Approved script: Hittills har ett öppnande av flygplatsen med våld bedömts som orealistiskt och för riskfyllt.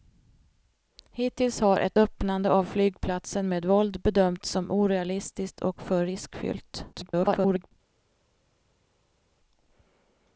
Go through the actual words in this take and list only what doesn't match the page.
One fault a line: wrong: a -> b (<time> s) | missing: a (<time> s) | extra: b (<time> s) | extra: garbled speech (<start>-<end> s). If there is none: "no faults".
extra: garbled speech (6.9-7.7 s)